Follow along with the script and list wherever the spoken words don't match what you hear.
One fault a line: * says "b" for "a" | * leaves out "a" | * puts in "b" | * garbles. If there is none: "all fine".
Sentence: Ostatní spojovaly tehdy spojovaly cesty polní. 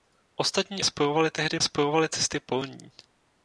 all fine